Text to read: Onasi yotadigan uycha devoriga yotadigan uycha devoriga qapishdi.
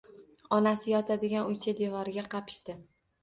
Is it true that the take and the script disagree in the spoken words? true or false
true